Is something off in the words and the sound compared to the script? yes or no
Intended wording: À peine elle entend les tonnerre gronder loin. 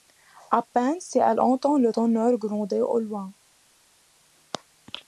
yes